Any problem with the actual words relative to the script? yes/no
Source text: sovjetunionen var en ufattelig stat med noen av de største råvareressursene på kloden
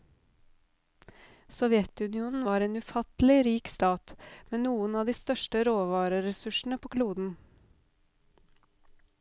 yes